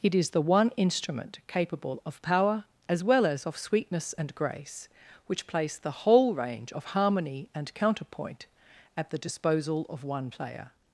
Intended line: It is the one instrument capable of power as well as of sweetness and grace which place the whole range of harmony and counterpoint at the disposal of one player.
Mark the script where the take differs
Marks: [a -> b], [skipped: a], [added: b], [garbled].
It is the one instrument capable of power as well as of sweetness and grace which place the whole range of harmony and counterpoint at the disposal of one player.